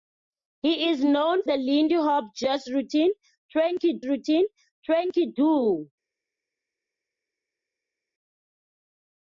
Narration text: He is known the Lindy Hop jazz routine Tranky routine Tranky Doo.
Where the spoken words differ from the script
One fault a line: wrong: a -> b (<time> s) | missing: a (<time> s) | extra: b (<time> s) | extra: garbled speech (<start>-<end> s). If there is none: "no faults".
no faults